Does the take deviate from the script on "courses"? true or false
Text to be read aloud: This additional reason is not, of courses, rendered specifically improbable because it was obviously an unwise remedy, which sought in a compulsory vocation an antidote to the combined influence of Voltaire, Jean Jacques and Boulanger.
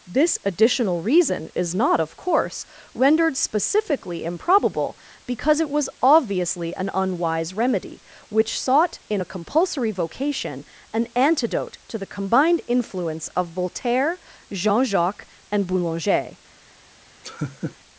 true